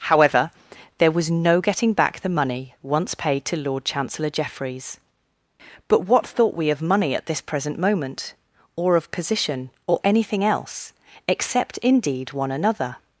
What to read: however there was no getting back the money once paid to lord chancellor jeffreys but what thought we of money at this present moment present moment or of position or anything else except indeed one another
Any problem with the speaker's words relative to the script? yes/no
yes